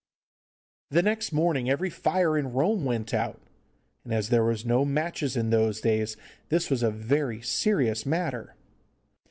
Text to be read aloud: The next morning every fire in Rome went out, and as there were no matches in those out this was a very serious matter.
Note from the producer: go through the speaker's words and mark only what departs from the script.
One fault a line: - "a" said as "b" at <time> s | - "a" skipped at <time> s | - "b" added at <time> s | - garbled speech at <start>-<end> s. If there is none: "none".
- "out" said as "days" at 5.8 s